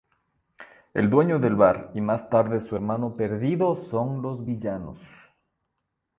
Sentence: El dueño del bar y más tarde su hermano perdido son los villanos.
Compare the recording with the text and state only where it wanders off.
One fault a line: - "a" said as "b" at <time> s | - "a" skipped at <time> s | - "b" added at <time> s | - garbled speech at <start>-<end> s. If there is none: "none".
none